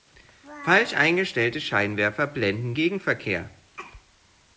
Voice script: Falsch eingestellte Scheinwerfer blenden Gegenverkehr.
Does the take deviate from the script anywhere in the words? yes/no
no